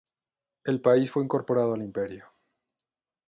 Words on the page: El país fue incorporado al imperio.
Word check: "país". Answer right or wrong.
right